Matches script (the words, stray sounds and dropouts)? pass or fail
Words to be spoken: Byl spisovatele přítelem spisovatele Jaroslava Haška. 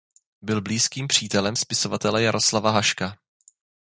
fail